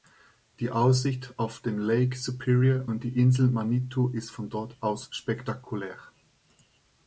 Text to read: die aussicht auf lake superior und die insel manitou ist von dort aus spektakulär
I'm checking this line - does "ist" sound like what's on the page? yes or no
yes